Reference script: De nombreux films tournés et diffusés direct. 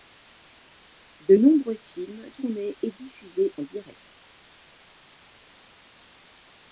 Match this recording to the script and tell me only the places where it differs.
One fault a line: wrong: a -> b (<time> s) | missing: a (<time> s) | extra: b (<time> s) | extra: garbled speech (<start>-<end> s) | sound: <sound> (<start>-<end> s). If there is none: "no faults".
no faults